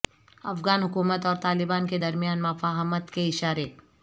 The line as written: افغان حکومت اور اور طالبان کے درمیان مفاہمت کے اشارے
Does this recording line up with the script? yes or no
no